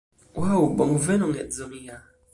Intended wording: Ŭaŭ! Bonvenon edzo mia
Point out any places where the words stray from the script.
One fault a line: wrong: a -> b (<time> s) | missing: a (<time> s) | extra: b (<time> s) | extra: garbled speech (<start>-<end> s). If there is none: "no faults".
no faults